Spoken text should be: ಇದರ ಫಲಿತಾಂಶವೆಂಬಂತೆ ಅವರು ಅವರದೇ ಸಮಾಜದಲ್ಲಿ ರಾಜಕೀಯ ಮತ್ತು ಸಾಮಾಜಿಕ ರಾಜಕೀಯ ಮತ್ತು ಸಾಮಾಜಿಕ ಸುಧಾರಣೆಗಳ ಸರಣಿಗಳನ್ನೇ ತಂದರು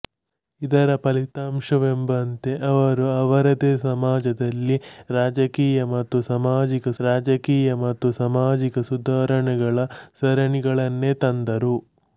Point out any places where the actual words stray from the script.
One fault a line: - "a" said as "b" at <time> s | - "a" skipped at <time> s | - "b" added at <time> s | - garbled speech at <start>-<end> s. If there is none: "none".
none